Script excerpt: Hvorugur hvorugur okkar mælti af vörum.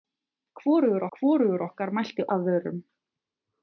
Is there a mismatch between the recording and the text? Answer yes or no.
no